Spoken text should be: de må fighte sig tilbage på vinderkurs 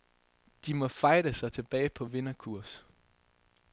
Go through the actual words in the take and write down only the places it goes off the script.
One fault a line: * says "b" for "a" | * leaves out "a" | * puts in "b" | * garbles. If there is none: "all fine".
all fine